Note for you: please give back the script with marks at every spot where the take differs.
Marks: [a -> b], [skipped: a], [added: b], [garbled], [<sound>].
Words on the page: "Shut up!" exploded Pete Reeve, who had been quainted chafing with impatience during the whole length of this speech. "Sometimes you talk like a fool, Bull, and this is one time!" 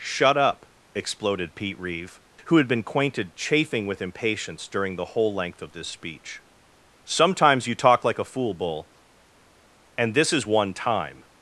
"Shut up!" exploded Pete Reeve, who had been quainted chafing with impatience during the whole length of this speech. "Sometimes you talk like a fool, Bull, and this is one time!"